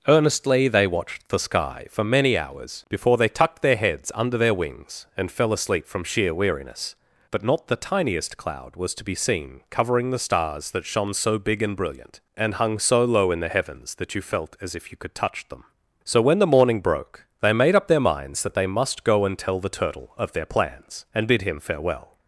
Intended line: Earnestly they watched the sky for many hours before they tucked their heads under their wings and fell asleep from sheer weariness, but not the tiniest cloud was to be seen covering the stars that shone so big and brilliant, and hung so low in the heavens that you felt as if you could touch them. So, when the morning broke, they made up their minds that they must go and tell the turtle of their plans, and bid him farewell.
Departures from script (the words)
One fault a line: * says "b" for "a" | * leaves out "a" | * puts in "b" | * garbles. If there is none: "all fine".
all fine